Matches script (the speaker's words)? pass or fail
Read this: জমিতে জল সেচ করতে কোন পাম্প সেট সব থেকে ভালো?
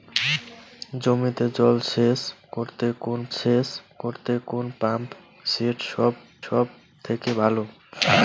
fail